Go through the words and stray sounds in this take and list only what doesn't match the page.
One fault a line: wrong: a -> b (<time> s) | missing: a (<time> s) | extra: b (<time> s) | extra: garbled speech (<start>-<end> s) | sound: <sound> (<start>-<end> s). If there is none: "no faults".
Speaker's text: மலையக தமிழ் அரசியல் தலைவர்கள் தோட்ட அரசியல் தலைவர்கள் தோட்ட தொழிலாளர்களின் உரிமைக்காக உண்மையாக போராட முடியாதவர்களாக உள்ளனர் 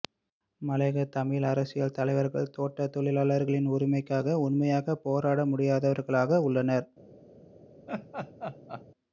missing: அரசியல் தலைவர்கள் தோட்ட (2.9 s)
sound: laugh (7.9-8.8 s)